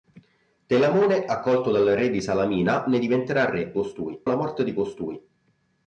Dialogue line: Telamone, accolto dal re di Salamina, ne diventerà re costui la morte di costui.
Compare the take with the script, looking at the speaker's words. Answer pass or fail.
pass